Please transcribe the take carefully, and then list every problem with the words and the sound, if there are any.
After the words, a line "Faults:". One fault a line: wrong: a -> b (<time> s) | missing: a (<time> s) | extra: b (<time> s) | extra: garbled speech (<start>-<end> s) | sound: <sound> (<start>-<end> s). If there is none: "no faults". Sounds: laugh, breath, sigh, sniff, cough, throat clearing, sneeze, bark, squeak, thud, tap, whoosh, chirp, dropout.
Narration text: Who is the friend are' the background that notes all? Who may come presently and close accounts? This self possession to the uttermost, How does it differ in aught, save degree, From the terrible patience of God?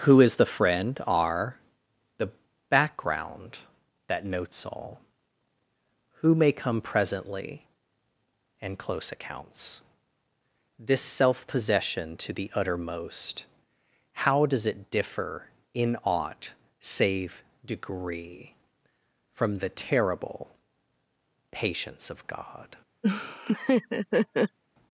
Who is the friend are' the background that notes all? Who may come presently and close accounts? This self possession to the uttermost, How does it differ in aught, save degree, From the terrible patience of God?
Faults:
sound: laugh (23.0-24.6 s)